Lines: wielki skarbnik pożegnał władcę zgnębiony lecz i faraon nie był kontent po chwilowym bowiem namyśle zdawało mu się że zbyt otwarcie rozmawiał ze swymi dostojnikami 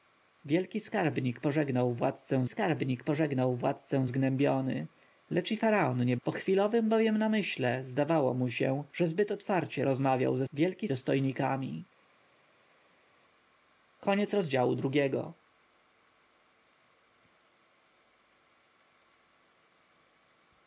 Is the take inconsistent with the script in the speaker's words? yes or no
yes